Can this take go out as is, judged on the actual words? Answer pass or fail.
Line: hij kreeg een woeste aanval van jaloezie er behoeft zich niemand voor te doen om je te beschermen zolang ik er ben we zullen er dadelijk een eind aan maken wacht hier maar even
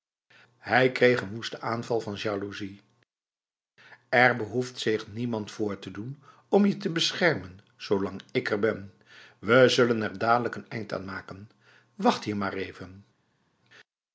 pass